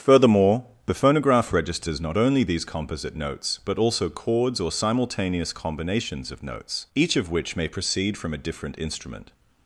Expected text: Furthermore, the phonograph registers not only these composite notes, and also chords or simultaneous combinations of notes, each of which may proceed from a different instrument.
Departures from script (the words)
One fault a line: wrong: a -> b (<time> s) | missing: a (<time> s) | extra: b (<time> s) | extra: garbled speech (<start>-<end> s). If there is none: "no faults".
wrong: and -> but (3.6 s)